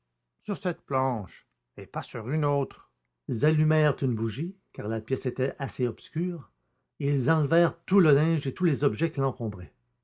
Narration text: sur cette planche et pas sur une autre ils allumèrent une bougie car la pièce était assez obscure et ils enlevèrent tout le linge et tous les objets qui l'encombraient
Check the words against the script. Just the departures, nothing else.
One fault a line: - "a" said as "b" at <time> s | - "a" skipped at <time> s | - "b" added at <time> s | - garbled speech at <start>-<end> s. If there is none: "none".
none